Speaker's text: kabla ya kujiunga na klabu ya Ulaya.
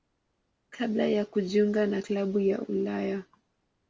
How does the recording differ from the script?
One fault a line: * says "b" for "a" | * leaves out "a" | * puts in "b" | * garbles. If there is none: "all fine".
all fine